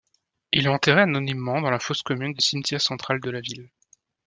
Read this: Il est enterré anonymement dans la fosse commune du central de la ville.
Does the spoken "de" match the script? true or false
true